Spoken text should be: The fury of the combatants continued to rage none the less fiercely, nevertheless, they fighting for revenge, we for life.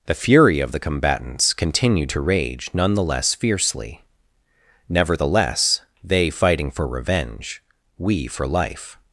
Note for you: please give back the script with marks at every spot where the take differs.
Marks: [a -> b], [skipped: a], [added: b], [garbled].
The fury of the combatants continued to rage none the less fiercely, nevertheless, they fighting for revenge, we for life.